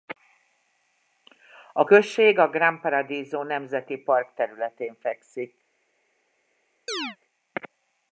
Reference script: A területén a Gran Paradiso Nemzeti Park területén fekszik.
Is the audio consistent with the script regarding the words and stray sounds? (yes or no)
no